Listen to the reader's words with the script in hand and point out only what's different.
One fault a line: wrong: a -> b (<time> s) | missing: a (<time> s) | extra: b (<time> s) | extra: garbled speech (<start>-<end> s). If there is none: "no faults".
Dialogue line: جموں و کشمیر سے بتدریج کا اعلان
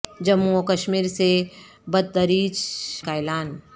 no faults